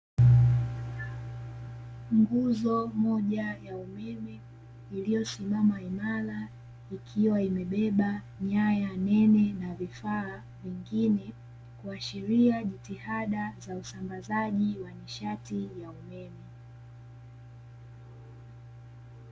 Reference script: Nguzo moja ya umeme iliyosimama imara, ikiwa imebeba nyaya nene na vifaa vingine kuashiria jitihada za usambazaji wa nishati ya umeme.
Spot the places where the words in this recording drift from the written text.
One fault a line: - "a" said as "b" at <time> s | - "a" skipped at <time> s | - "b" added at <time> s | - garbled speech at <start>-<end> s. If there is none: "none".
none